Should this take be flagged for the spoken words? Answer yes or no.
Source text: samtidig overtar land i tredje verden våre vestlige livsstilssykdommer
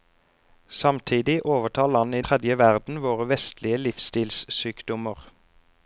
no